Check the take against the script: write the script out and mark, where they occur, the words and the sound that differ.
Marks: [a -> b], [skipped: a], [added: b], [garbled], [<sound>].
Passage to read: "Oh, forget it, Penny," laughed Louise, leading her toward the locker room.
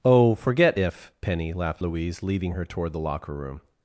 "Oh, forget [it, -> if] Penny," laughed Louise, leading her toward the locker room.